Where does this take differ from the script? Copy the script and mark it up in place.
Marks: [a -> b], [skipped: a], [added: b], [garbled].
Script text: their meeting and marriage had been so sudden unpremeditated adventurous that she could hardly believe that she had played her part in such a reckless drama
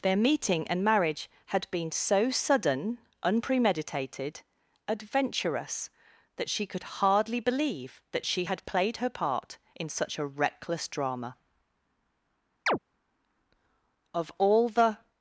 their meeting and marriage had been so sudden unpremeditated adventurous that she could hardly believe that she had played her part in such a reckless drama [added: of all the]